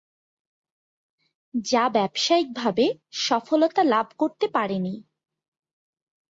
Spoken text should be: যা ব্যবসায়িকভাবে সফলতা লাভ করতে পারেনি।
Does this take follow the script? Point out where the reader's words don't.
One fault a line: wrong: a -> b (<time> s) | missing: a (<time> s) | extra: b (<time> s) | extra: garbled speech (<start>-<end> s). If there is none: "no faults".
no faults